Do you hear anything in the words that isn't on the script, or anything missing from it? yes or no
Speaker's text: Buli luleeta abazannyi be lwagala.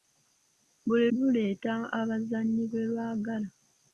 no